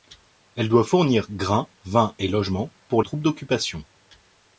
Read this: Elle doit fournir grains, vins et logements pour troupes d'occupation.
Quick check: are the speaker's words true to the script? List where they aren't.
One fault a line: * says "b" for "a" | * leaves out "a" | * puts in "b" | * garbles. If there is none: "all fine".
all fine